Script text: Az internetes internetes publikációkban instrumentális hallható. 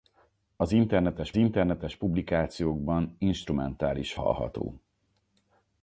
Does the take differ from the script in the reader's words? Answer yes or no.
no